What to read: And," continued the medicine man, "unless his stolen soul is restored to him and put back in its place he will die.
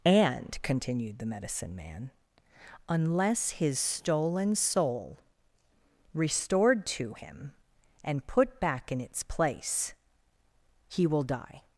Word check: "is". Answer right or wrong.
wrong